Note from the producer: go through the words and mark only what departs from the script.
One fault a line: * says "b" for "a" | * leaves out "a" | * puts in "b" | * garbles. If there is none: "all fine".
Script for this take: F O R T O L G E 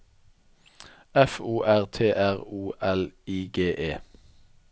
* puts in "R"
* puts in "I"